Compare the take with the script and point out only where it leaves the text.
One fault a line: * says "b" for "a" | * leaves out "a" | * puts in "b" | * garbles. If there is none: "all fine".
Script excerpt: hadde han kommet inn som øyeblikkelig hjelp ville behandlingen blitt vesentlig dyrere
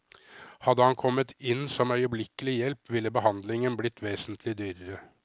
all fine